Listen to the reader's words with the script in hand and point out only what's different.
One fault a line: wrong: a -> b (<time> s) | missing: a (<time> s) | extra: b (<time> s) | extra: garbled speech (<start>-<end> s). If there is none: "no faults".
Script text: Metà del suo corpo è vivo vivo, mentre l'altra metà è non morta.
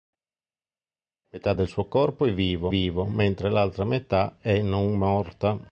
no faults